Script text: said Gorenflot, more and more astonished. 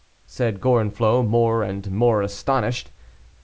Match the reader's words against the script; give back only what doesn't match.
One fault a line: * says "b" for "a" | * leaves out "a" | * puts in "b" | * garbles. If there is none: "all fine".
all fine